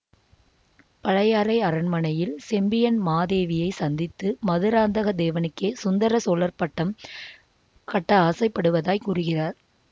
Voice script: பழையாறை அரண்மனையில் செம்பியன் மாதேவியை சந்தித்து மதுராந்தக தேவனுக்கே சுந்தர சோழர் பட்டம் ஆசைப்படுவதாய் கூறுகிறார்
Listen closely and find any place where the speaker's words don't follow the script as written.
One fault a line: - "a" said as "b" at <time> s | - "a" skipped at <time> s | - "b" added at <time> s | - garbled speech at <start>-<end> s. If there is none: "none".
- "கட்ட" added at 7.9 s